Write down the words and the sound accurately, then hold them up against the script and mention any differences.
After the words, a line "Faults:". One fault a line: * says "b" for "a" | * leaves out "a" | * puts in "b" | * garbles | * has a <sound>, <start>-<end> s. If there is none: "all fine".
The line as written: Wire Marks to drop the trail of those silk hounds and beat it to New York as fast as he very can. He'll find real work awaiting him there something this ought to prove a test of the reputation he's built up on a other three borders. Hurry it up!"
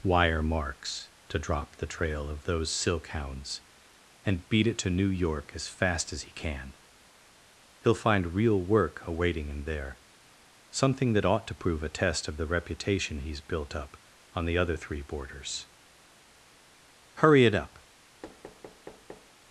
Wire Marks to drop the trail of those silk hounds and beat it to New York as fast as he can. He'll find real work awaiting him there something that ought to prove a test of the reputation he's built up on the other three borders. Hurry it up!"
Faults:
* leaves out "very"
* says "that" for "this"
* says "the" for "a"
* has a thud, 18.2-19.3 s